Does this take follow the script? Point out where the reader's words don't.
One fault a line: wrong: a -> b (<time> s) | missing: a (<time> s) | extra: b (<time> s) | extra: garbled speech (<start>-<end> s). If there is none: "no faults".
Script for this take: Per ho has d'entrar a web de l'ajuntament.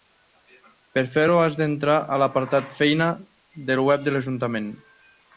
extra: fer (1.1 s)
extra: l'apartat feina del (2.2 s)